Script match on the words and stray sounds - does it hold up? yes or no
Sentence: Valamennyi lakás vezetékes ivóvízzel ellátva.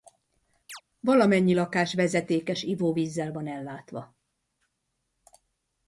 no